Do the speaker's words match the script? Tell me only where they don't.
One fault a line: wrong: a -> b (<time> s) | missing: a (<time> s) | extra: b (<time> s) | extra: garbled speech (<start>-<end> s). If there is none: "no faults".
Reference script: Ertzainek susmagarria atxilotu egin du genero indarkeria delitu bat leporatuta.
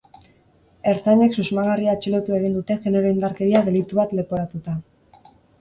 wrong: du -> dute (2.6 s)